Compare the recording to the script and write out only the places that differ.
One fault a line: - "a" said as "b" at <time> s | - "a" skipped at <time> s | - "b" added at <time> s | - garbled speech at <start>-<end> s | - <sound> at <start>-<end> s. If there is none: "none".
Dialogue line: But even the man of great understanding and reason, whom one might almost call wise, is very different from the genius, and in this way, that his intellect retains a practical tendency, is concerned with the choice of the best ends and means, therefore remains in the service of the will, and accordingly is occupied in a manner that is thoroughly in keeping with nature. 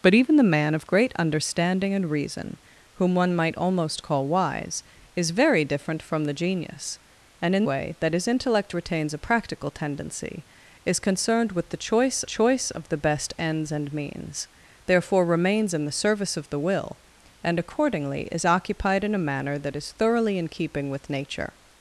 - "this" skipped at 7.7 s
- "choice" added at 12.2 s